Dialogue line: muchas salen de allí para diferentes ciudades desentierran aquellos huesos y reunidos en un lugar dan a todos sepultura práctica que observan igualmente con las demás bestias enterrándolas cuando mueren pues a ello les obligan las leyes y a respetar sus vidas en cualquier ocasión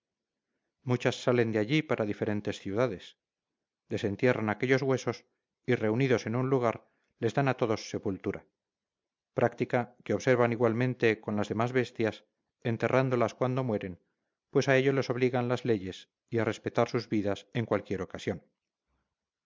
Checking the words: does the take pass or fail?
fail